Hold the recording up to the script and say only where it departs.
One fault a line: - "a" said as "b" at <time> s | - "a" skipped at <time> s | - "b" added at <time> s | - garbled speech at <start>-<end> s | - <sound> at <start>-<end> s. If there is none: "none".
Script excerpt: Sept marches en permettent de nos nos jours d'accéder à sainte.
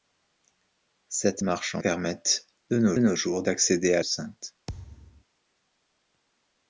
- thud at 4.7-5.2 s